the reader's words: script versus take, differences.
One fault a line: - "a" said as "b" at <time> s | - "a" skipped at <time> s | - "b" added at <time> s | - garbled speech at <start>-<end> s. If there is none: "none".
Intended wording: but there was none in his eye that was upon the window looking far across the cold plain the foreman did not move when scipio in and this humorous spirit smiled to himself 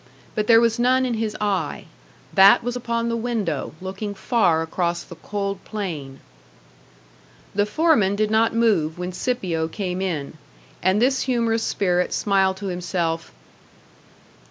- "came" added at 9.7 s